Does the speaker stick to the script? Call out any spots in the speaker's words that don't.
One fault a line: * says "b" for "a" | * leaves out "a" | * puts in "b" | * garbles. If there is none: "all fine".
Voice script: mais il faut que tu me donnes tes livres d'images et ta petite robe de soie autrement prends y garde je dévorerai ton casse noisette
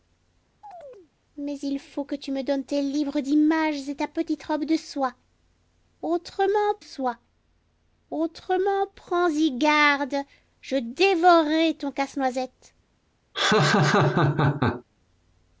* puts in "soie autrement"